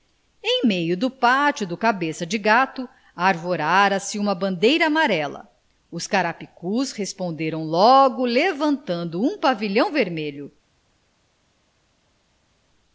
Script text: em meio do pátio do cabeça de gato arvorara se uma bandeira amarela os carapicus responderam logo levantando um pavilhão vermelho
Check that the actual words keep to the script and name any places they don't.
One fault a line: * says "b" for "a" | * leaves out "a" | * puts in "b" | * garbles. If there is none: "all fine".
all fine